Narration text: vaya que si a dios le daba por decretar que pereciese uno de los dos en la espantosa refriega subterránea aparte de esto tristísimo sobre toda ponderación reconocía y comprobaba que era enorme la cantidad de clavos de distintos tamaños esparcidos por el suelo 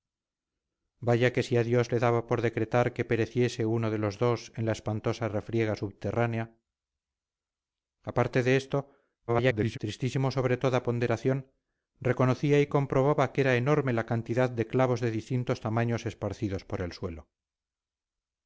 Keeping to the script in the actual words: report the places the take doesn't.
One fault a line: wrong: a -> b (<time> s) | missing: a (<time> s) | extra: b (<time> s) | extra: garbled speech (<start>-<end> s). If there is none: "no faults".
extra: garbled speech (9.3-9.8 s)